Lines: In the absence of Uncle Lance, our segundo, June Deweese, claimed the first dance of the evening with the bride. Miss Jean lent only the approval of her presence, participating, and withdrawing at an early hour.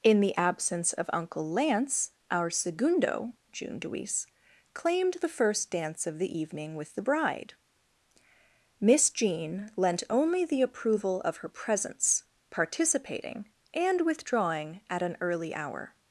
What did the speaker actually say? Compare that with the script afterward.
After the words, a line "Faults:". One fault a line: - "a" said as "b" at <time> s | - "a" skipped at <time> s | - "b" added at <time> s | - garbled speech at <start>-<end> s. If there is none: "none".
In the absence of Uncle Lance, our segundo, June Deweese, claimed the first dance of the evening with the bride. Miss Jean lent only the approval of her presence, participating, and withdrawing at an early hour.
Faults:
none